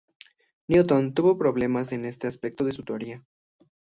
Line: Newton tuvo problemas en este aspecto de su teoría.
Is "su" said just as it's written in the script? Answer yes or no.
yes